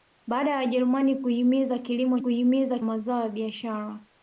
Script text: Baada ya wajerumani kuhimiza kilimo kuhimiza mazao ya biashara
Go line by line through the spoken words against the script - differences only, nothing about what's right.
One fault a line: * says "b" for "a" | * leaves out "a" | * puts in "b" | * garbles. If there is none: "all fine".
all fine